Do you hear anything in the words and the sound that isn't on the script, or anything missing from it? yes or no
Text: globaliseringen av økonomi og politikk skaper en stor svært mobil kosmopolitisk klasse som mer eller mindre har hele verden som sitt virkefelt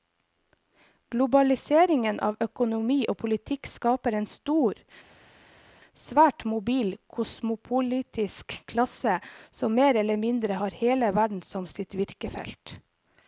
no